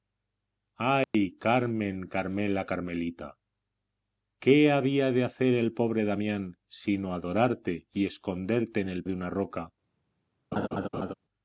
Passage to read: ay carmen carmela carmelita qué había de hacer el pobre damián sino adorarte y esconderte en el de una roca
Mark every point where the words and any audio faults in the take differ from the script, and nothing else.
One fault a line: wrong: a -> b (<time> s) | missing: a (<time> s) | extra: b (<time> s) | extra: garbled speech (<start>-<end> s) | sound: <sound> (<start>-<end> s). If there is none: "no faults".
sound: dropout (1.0-1.1 s)
sound: laugh (10.5-11.1 s)